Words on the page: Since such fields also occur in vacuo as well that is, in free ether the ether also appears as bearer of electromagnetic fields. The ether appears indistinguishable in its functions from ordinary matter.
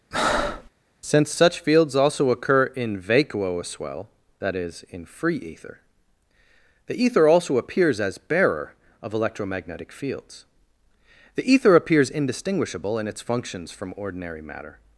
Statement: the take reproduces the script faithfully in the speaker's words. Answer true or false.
true